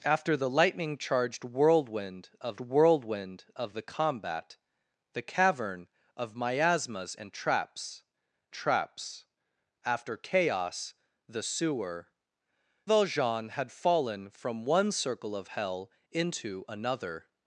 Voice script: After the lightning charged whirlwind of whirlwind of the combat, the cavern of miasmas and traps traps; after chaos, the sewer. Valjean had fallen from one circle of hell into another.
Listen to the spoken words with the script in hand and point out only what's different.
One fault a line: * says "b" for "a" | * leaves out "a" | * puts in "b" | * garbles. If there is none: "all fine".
all fine